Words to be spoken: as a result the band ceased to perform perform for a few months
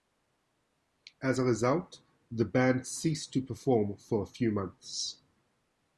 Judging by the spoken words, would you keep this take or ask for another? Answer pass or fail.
fail